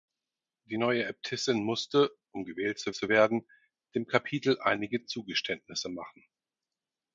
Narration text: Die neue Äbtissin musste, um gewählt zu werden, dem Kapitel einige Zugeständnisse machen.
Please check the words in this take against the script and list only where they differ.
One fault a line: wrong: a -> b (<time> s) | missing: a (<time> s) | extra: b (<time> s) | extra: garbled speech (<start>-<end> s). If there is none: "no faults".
extra: zu (2.9 s)